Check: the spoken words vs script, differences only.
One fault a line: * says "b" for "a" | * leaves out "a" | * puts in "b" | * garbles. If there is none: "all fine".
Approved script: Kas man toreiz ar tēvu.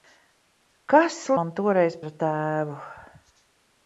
all fine